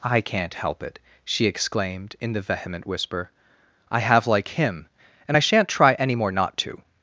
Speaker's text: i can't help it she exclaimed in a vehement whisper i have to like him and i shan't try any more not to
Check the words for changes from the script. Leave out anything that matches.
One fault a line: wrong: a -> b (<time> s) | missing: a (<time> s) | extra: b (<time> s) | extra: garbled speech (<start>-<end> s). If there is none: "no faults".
wrong: a -> the (2.3 s)
missing: to (4.2 s)